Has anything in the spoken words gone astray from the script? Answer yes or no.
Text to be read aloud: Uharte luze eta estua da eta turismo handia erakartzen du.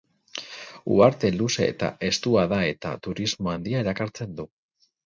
no